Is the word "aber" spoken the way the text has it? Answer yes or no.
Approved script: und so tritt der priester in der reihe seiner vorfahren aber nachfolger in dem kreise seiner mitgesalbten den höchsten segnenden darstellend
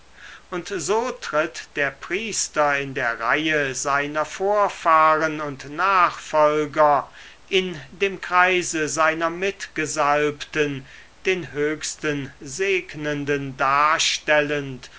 no